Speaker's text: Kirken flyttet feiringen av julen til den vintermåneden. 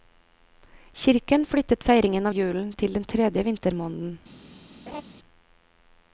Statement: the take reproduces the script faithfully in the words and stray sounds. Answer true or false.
false